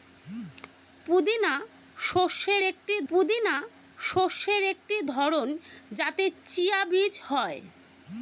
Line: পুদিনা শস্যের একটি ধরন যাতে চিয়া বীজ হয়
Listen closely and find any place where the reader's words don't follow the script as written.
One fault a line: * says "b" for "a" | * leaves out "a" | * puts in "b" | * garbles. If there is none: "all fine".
* puts in "পুদিনা শস্যের একটি"